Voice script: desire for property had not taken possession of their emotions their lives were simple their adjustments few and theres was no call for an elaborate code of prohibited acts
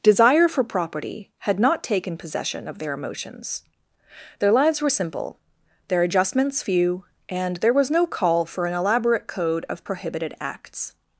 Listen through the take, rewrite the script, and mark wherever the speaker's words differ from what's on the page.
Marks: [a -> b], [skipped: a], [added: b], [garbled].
desire for property had not taken possession of their emotions their lives were simple their adjustments few and [theres -> there] was no call for an elaborate code of prohibited acts